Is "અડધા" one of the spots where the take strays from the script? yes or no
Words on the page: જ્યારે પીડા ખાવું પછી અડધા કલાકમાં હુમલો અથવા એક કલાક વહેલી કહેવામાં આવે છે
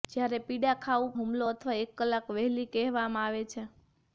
yes